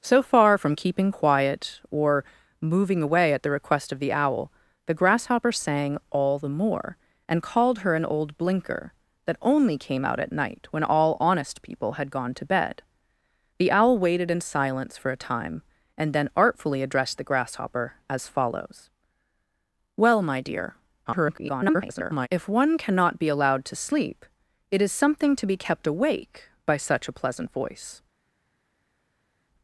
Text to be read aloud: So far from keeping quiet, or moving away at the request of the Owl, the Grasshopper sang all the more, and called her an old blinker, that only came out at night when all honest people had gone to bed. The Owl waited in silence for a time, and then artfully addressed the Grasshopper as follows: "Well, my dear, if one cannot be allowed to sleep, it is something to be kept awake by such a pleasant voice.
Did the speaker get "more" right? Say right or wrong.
right